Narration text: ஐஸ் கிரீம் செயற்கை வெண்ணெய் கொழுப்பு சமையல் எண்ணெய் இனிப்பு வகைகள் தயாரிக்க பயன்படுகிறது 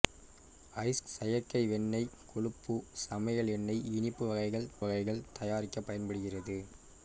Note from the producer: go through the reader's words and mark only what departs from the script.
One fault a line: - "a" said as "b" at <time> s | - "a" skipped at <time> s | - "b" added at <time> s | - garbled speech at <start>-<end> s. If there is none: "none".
- "கிரீம்" skipped at 1.0 s
- "வகைகள்" added at 4.8 s